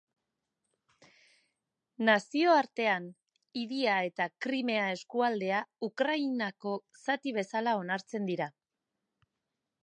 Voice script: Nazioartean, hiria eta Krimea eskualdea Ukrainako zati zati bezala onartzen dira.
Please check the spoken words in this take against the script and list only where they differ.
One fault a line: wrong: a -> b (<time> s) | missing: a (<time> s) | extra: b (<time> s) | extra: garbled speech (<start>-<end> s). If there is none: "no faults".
missing: zati (7.3 s)